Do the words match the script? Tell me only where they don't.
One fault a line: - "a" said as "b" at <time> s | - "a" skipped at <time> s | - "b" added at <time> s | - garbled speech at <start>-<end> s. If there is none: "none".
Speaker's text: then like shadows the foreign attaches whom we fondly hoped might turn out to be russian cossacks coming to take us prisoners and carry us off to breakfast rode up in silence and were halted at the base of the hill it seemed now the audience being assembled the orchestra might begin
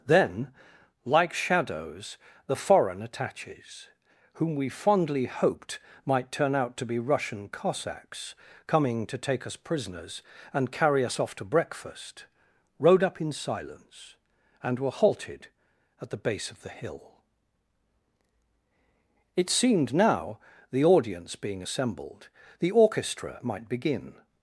none